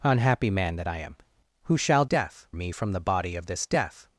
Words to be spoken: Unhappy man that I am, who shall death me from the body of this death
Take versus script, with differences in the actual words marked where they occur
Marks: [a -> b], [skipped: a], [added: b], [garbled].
Unhappy man that I am, who shall death me from the body of this death